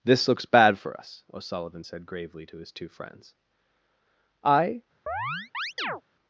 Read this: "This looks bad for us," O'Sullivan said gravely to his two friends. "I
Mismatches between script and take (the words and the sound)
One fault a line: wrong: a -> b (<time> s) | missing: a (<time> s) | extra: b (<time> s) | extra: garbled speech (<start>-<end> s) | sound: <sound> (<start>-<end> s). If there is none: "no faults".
sound: chirp (5.1-6.0 s)